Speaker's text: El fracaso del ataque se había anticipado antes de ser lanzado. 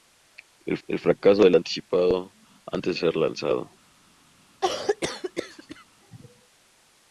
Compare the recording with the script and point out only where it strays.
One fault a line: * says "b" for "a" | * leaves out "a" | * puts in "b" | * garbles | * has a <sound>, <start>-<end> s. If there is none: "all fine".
* puts in "el"
* leaves out "ataque se había"
* leaves out "de"
* has a cough, 4.6-5.8 s